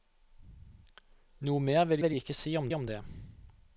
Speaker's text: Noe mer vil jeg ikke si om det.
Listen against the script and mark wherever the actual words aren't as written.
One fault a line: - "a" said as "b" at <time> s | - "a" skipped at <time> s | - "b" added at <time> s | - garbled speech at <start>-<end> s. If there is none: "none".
- "vil" added at 2.0 s
- "om" added at 2.7 s